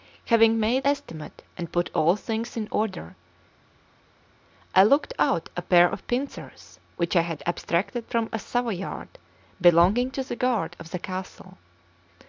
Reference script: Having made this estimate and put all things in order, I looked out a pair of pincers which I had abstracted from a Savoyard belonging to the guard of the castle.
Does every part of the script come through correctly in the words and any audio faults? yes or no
no